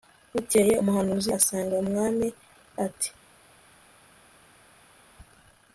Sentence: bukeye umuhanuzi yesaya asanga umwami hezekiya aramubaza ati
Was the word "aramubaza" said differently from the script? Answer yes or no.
yes